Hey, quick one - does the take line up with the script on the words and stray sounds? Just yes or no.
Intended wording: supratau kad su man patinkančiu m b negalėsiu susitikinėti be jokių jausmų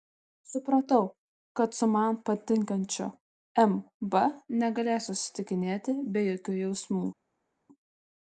yes